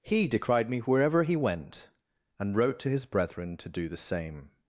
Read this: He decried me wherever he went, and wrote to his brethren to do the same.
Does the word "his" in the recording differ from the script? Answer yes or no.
no